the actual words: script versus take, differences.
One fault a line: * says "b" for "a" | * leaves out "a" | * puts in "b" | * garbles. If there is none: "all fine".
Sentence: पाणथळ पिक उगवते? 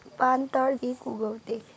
all fine